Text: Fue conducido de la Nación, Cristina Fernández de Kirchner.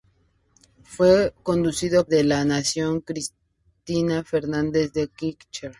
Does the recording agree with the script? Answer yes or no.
yes